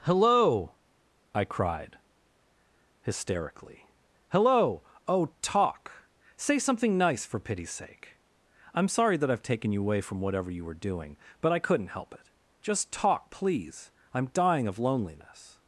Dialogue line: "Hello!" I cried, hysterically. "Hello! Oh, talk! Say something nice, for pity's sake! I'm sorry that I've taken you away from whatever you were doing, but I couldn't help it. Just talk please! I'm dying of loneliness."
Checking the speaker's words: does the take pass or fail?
pass